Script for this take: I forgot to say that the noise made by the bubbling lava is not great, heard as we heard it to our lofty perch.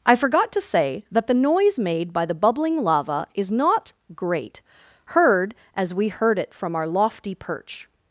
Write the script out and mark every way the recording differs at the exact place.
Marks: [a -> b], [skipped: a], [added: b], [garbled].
I forgot to say that the noise made by the bubbling lava is not great, heard as we heard it [to -> from] our lofty perch.